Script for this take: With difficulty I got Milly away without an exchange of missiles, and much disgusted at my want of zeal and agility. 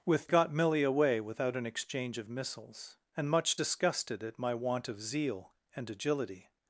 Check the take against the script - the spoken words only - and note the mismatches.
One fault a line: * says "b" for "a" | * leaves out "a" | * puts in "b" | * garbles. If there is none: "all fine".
* leaves out "difficulty I"